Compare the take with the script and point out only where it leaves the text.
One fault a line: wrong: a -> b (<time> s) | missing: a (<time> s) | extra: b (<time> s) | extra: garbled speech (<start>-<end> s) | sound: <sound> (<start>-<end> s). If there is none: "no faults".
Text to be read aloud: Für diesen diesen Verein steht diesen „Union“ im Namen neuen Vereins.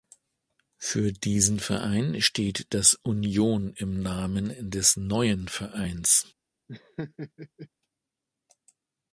missing: diesen (1.6 s)
wrong: diesen -> das (2.7 s)
extra: des (4.7 s)
sound: laugh (6.7-7.7 s)